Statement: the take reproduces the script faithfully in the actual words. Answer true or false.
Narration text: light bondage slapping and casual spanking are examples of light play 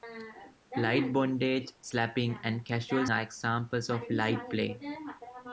false